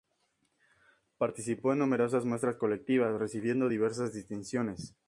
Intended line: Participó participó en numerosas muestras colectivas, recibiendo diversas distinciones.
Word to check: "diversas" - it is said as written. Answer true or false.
true